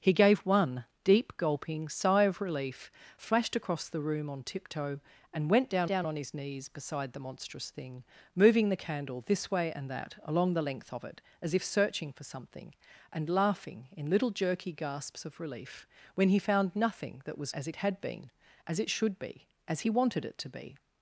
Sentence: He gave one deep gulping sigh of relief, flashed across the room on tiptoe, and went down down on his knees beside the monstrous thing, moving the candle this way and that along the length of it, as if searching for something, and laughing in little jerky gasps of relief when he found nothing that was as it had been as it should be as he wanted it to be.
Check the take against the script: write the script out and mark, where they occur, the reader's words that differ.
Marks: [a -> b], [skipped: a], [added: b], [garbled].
He gave one deep gulping sigh of relief, flashed across the room on tiptoe, and went down down on his knees beside the monstrous thing, moving the candle this way and that along the length of it, as if searching for something, and laughing in little jerky gasps of relief when he found nothing that was as it had been as it should be as he wanted it to be.